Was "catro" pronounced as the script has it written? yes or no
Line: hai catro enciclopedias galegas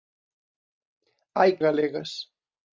no